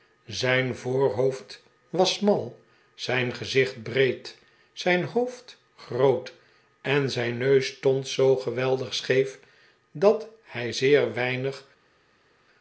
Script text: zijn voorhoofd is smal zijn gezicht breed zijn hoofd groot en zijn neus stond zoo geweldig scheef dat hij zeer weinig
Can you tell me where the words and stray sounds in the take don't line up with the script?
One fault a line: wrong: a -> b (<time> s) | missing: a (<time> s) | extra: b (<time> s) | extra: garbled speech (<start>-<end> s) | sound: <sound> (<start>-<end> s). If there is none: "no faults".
wrong: is -> was (1.9 s)